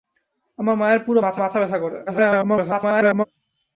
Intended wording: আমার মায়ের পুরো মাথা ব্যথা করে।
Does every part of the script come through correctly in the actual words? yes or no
no